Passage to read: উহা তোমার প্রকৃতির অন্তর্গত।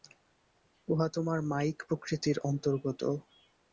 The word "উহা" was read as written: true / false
true